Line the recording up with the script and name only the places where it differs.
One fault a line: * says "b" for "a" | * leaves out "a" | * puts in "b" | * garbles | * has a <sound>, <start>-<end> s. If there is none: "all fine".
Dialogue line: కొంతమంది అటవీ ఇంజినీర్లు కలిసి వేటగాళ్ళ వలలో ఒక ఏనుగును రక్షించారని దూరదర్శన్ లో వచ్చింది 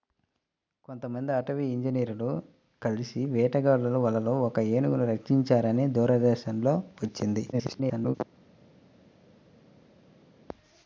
* garbles